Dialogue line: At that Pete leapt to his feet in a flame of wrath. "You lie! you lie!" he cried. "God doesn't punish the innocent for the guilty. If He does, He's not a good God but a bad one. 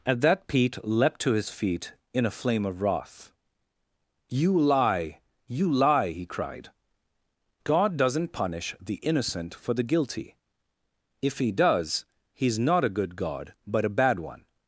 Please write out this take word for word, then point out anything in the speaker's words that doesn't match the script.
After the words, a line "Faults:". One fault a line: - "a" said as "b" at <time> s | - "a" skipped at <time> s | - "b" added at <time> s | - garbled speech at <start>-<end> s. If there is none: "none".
At that Pete leapt to his feet in a flame of wrath. "You lie! you lie!" he cried. "God doesn't punish the innocent for the guilty. If He does, He's not a good God but a bad one.
Faults:
none